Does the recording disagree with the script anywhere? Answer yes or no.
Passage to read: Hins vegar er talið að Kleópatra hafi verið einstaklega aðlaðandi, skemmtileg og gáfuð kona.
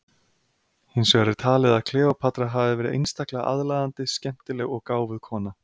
no